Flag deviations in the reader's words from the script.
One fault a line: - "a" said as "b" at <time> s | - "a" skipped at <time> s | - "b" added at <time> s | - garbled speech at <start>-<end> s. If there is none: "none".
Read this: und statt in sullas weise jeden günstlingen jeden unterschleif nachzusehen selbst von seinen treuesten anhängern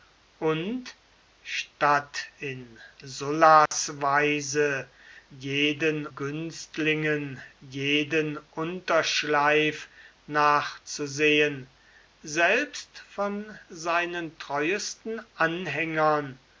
none